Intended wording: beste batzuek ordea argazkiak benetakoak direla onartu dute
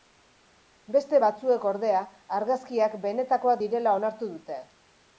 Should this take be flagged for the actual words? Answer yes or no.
no